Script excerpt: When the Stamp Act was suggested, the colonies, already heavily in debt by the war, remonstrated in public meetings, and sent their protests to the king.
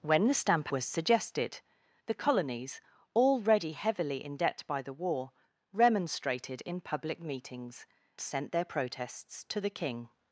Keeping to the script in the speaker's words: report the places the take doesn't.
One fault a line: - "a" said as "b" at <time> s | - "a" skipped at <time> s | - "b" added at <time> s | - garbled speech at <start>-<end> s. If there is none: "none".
- "Act" skipped at 0.7 s
- "and" skipped at 7.9 s